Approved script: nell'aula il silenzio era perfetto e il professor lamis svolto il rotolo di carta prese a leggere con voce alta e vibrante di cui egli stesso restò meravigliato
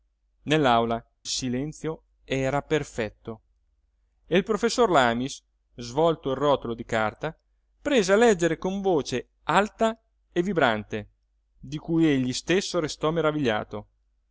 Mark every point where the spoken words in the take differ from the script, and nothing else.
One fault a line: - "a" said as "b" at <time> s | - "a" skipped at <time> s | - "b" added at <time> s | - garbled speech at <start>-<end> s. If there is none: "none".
- "il" skipped at 1.0 s